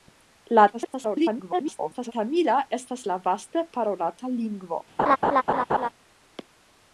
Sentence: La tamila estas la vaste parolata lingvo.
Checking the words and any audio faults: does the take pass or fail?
fail